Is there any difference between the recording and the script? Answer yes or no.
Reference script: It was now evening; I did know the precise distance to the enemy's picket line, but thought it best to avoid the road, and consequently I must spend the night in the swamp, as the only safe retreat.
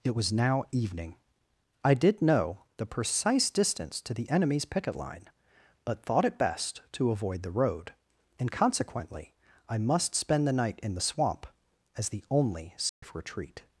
no